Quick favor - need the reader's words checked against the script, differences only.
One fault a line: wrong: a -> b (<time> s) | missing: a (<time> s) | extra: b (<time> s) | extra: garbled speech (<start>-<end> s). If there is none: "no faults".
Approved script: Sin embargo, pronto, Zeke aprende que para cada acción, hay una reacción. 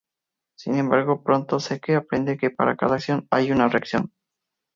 no faults